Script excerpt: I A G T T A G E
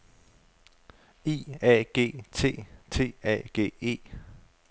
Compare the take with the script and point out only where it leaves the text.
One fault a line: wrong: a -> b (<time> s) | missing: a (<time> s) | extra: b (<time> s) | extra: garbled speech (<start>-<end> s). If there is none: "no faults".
no faults